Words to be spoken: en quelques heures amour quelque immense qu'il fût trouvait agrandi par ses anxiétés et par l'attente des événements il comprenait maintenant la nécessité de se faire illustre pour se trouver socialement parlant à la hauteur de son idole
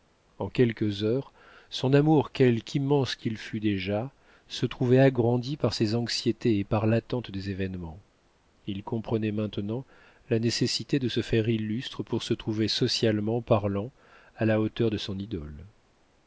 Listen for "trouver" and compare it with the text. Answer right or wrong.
right